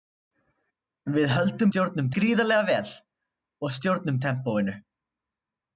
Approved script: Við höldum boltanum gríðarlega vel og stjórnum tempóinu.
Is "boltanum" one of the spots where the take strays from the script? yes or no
yes